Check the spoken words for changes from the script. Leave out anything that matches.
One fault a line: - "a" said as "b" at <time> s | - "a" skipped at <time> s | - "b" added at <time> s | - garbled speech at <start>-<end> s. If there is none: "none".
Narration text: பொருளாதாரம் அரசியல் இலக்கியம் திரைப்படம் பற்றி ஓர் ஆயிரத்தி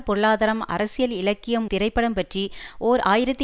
none